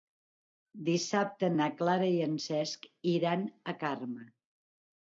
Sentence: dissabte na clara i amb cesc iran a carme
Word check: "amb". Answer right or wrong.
wrong